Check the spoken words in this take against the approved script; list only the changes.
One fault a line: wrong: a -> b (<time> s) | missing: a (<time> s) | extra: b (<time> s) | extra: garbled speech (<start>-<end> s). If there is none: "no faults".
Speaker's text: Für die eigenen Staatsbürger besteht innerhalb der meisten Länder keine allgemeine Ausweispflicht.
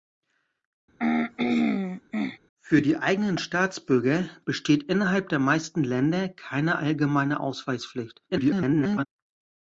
extra: garbled speech (8.3-9.1 s)